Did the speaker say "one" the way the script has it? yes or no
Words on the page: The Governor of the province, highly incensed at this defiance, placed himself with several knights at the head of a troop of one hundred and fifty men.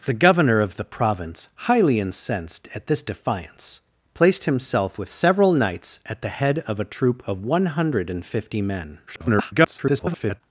yes